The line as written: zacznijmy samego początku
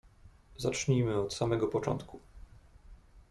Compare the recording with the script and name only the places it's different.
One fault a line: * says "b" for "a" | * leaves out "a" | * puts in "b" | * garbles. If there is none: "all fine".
* puts in "od"